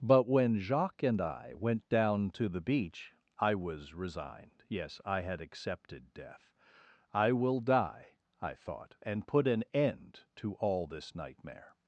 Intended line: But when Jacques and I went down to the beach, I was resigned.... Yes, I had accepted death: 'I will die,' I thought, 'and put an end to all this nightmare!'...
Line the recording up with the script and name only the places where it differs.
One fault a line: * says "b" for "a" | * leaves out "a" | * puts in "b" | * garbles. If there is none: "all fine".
all fine